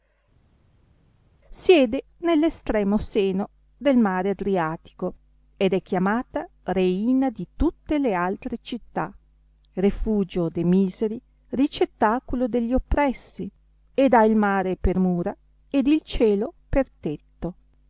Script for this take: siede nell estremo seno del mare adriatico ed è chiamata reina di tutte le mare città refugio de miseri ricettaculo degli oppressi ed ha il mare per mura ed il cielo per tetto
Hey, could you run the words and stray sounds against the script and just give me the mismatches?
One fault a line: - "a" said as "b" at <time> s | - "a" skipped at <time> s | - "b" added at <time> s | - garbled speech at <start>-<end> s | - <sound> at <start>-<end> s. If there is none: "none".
- "mare" said as "altre" at 8.1 s